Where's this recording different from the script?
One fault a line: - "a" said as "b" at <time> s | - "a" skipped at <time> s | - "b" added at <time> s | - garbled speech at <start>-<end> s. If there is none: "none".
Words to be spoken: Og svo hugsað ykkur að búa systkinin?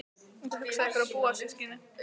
none